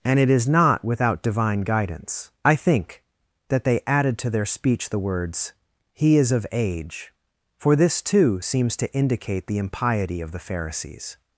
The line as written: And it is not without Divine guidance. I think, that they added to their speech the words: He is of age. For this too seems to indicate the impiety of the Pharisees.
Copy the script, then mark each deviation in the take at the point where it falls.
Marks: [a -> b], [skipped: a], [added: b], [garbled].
And it is not without Divine guidance. I think, that they added to their speech the words: He is of age. For this too seems to indicate the impiety of the Pharisees.